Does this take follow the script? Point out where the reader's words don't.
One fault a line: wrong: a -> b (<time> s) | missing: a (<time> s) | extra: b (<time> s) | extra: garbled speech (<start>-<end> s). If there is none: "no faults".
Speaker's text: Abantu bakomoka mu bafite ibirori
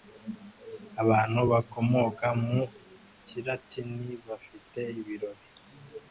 extra: kilatini (3.3 s)